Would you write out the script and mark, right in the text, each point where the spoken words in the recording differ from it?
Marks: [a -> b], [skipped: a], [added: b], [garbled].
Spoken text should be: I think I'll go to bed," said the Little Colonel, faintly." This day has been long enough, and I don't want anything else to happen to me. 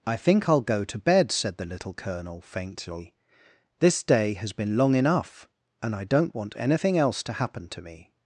I think I'll go to bed," said the Little Colonel, faintly." This day has been long enough, and I don't want anything else to happen to me.